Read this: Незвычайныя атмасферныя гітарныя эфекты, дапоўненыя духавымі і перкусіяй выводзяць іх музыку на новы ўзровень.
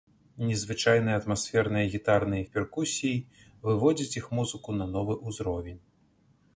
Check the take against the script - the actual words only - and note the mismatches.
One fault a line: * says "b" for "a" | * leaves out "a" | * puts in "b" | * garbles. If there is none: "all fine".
* leaves out "эфекты дапоўненыя духавымі"